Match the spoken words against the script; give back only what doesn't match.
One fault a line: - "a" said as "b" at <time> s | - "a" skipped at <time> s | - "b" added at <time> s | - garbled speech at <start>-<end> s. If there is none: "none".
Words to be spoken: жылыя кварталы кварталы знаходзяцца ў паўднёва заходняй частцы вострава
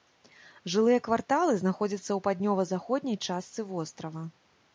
- "кварталы" skipped at 1.5 s